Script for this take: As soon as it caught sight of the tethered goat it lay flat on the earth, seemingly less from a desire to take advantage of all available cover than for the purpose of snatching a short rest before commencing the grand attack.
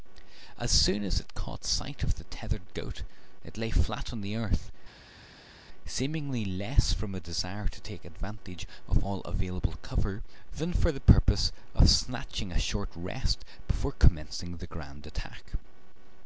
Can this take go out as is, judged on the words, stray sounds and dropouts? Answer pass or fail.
pass